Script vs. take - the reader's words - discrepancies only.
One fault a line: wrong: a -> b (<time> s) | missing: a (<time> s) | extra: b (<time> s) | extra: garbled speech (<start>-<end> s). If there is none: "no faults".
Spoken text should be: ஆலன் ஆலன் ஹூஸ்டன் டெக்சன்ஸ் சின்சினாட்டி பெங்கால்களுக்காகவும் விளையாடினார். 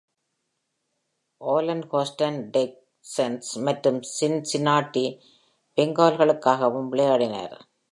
missing: ஆலன் (1.8 s)
extra: மற்றும் (3.7 s)